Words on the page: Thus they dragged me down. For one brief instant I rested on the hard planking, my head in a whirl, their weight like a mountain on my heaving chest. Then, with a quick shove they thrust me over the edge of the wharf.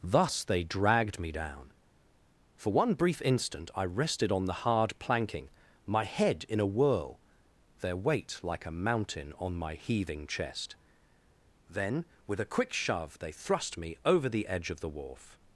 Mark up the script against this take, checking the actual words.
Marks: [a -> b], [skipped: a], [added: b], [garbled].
Thus they dragged me down. For one brief instant I rested on the hard planking, my head in a whirl, their weight like a mountain on my heaving chest. Then, with a quick shove they thrust me over the edge of the wharf.